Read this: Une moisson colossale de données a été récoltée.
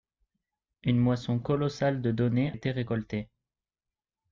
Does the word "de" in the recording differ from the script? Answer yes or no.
no